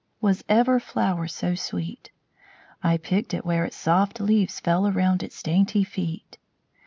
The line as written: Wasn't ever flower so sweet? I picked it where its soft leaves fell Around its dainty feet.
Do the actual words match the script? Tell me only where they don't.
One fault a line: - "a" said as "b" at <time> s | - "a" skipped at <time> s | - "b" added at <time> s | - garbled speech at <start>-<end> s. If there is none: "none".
- "Wasn't" said as "Was" at 0.2 s